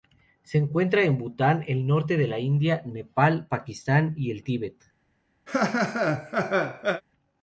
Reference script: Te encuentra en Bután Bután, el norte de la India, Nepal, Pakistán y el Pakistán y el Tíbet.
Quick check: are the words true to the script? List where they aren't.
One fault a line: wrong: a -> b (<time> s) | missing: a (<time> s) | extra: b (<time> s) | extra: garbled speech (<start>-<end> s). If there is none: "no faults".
wrong: Te -> Se (0.4 s)
missing: Bután (1.6 s)
missing: Pakistán y el (4.4 s)